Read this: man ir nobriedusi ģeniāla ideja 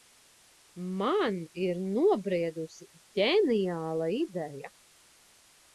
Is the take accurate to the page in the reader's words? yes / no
yes